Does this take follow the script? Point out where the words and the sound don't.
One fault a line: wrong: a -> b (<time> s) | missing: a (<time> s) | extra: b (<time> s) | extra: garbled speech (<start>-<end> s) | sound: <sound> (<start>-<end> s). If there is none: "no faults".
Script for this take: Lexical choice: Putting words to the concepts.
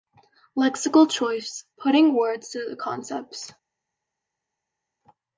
no faults